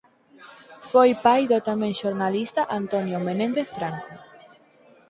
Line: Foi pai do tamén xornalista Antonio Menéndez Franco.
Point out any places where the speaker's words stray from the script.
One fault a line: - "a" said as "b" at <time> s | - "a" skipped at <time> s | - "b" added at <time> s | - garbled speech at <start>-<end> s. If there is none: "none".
none